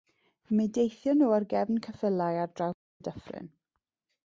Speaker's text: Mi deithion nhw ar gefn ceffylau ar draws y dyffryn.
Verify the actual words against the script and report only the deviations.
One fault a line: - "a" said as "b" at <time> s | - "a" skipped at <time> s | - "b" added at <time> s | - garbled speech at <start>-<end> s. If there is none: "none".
none